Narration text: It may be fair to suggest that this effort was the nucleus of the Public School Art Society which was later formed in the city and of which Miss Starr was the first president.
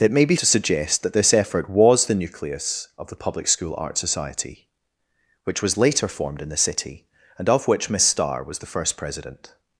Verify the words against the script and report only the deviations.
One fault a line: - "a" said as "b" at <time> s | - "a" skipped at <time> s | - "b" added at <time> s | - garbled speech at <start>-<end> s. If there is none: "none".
- "fair" skipped at 0.3 s